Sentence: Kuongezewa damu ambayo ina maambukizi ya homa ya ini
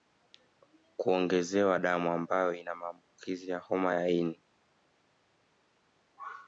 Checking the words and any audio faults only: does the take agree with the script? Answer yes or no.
yes